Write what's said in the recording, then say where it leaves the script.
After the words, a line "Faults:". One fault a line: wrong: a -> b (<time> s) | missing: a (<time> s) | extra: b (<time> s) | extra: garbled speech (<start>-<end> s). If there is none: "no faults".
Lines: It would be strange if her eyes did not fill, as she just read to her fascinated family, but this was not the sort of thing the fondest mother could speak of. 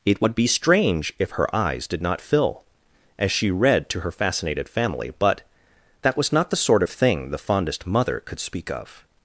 It would be strange if her eyes did not fill, as she read to her fascinated family, but that was not the sort of thing the fondest mother could speak of.
Faults:
missing: just (3.5 s)
wrong: this -> that (6.0 s)